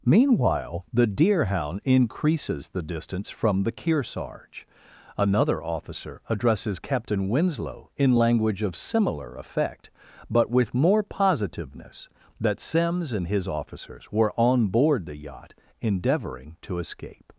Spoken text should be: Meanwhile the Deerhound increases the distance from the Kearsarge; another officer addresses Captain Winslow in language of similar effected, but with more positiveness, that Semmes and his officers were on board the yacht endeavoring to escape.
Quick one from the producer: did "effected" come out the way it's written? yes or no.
no